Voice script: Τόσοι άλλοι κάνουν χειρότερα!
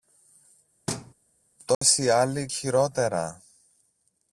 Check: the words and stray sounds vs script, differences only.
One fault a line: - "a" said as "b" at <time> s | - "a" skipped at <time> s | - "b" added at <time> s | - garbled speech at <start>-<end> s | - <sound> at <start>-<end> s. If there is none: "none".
- thud at 0.9-1.1 s
- dropout at 1.7-1.8 s
- "κάνουν" skipped at 2.5 s